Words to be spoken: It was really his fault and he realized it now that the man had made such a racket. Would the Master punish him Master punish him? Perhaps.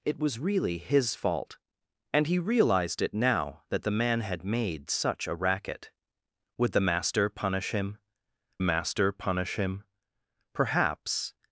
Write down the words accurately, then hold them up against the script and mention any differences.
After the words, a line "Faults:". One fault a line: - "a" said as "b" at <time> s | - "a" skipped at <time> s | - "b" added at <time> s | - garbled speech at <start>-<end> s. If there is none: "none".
It was really his fault and he realized it now that the man had made such a racket. Would the Master punish him Master punish him? Perhaps.
Faults:
none